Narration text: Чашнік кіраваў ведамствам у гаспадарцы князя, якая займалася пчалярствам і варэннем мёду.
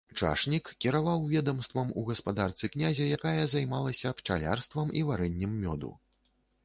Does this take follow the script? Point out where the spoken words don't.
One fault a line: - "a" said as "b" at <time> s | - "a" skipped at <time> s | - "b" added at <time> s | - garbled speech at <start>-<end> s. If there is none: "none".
none